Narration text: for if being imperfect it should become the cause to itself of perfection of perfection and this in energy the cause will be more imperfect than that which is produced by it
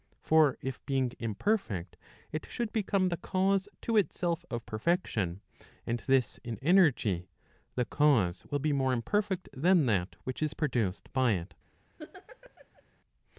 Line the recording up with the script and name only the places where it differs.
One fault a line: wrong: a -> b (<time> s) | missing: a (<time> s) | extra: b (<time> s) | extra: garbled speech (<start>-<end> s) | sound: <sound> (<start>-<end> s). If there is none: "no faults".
missing: of perfection (5.4 s)
sound: laugh (12.0-12.8 s)